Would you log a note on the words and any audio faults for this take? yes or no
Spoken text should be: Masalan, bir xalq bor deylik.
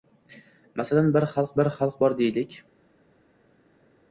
yes